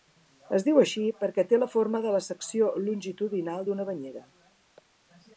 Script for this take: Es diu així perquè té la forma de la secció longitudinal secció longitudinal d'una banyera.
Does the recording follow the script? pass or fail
fail